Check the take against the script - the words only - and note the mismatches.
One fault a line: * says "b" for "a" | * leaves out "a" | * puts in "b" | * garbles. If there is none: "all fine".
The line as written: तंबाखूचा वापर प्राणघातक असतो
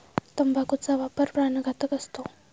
all fine